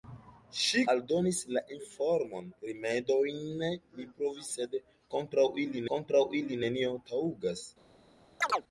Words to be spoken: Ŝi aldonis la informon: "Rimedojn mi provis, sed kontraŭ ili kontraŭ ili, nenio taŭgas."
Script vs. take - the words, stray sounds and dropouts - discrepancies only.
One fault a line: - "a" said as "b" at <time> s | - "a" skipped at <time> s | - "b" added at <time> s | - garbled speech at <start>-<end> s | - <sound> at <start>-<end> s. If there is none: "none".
- chirp at 8.4-8.6 s